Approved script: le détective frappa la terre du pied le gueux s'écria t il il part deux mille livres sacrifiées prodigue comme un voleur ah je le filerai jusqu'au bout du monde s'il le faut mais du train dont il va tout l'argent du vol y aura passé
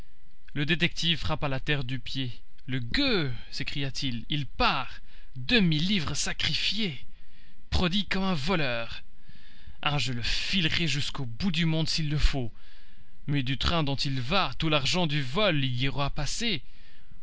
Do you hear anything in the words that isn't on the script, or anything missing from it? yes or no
no